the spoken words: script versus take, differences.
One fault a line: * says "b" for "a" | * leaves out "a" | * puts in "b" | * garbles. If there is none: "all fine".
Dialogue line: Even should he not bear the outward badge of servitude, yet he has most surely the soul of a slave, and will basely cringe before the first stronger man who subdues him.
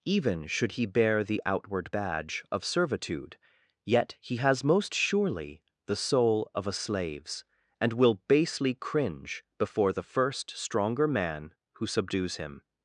* leaves out "not"
* says "slaves" for "slave"